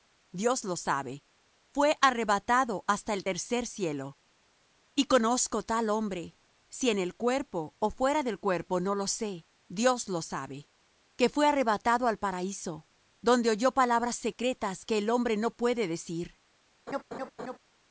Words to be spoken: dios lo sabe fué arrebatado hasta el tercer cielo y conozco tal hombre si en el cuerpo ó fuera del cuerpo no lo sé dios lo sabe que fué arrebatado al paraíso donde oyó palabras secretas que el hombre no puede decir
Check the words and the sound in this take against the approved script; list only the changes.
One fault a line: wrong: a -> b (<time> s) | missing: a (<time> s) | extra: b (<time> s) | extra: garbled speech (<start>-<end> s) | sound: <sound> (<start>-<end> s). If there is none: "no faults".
sound: laugh (16.9-17.6 s)